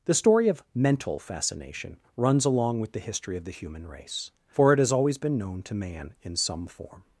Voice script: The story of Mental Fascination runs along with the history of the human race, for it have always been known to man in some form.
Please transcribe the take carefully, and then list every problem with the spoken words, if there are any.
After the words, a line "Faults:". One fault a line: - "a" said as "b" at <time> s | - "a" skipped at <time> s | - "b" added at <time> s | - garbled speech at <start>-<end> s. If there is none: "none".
The story of Mental Fascination runs along with the history of the human race, for it has always been known to man in some form.
Faults:
- "have" said as "has" at 4.8 s